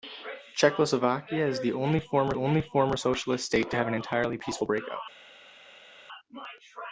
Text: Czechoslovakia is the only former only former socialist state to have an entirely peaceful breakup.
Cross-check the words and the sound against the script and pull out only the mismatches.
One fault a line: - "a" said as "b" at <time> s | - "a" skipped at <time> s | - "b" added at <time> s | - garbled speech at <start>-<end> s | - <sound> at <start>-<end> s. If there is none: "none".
none